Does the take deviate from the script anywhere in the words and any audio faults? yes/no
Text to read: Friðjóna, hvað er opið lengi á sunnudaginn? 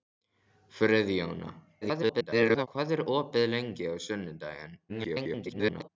yes